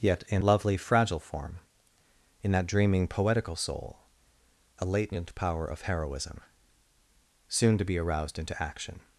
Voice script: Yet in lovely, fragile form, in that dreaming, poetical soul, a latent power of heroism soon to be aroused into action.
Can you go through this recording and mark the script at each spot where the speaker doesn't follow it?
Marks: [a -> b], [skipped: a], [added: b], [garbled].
Yet in lovely, fragile form, in that dreaming, poetical soul, a latent power of heroism soon to be aroused into action.